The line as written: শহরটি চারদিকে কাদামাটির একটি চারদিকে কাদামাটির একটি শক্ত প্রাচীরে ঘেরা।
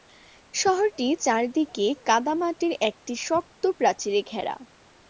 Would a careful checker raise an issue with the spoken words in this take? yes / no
yes